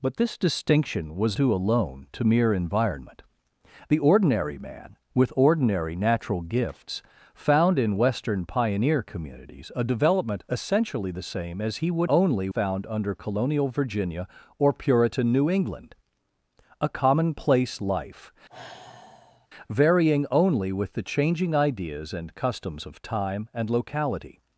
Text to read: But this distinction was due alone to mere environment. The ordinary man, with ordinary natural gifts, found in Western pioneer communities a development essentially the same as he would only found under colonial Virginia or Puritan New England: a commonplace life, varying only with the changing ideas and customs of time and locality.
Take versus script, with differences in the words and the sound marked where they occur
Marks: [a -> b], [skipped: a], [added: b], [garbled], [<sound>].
But this distinction was due alone to mere environment. The ordinary man, with ordinary natural gifts, found in Western pioneer communities a development essentially the same as he would only found under colonial Virginia or Puritan New England: a commonplace life, [sigh] varying only with the changing ideas and customs of time and locality.